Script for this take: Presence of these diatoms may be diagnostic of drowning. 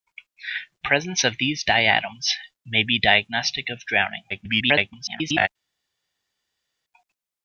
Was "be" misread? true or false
false